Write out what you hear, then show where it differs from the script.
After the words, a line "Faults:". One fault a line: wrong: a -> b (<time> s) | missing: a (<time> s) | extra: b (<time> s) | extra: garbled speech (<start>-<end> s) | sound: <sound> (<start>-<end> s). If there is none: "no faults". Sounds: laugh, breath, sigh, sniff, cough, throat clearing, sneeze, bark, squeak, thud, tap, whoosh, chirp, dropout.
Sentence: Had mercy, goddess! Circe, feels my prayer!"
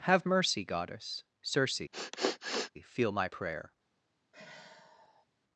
Have mercy, goddess! Circe, feel my prayer!"
Faults:
wrong: Had -> Have (0.1 s)
sound: sniff (1.9-2.7 s)
wrong: feels -> feel (2.8 s)
sound: sigh (4.3-5.3 s)